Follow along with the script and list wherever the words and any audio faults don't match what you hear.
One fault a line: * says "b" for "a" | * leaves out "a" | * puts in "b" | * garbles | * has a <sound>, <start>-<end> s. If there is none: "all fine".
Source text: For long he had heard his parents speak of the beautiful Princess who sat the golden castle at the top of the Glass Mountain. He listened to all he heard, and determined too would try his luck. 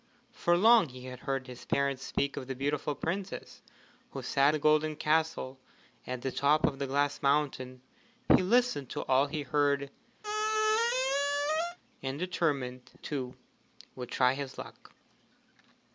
* has a squeak, 10.2-11.8 s